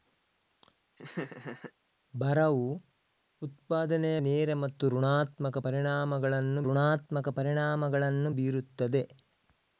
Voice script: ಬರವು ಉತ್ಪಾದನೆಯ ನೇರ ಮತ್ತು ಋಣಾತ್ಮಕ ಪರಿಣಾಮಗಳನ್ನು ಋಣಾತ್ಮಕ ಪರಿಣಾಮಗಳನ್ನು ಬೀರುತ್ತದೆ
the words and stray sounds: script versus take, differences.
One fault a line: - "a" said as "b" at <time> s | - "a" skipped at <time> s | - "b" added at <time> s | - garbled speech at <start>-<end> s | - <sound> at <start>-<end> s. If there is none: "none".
- laugh at 1.0-1.7 s